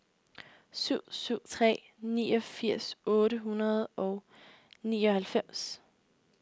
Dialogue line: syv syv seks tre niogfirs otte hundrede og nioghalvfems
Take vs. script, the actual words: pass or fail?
fail